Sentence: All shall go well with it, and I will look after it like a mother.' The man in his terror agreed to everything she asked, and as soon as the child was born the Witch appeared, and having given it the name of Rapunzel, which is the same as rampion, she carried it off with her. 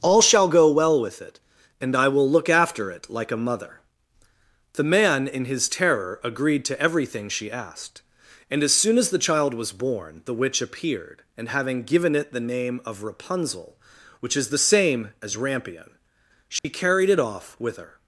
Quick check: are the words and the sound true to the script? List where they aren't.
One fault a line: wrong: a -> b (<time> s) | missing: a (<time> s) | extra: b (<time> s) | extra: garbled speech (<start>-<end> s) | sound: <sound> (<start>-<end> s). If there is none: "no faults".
sound: dropout (16.6-16.6 s)